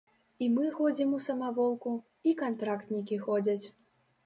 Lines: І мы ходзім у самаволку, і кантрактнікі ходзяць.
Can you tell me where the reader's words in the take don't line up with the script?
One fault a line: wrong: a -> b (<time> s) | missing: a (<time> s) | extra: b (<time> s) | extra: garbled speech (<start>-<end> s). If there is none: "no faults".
no faults